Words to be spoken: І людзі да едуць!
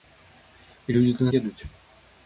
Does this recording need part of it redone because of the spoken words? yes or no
no